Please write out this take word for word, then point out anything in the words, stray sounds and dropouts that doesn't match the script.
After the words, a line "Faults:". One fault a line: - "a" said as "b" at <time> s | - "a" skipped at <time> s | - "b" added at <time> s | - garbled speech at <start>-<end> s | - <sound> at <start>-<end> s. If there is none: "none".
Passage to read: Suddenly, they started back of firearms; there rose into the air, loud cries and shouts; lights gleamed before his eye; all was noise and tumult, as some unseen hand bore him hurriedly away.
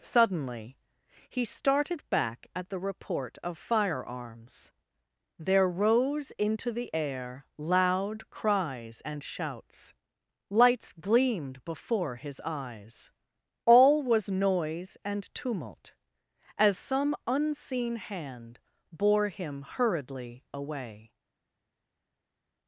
Suddenly, he started back at the report of firearms; there rose into the air, loud cries and shouts; lights gleamed before his eyes; all was noise and tumult, as some unseen hand bore him hurriedly away.
Faults:
- "they" said as "he" at 1.3 s
- "at the report" added at 2.5 s
- "eye" said as "eyes" at 12.4 s